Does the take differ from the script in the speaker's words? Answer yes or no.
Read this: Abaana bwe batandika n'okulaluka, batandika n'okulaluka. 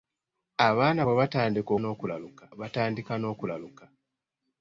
no